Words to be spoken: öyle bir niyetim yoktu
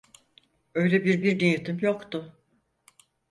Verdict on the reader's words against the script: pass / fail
fail